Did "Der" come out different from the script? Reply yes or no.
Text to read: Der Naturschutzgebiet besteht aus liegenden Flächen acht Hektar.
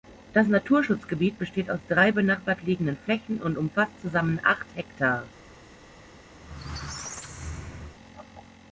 yes